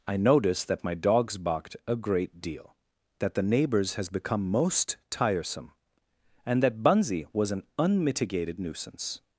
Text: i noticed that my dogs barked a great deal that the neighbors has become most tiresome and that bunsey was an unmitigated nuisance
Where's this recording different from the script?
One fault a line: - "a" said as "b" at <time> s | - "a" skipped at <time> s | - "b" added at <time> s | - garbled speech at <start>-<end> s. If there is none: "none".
none